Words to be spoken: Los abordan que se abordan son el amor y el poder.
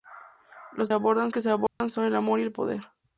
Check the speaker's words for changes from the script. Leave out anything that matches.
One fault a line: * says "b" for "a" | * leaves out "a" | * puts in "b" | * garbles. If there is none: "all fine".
all fine